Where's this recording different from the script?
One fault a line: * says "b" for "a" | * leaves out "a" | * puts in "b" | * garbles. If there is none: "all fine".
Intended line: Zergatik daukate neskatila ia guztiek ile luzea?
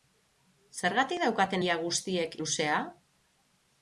* leaves out "neskatila"
* leaves out "ile"